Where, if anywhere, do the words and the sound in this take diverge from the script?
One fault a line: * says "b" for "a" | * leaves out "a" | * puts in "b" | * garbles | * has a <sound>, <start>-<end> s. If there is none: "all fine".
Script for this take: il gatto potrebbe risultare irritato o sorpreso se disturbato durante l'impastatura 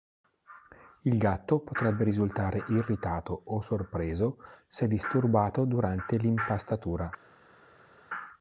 all fine